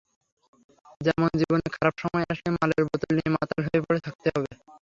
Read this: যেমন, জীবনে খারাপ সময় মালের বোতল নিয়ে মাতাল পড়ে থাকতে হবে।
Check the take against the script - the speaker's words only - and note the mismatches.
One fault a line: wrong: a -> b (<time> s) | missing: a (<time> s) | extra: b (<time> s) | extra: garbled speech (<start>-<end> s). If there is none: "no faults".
extra: আসলে (2.3 s)
extra: হয়ে (3.6 s)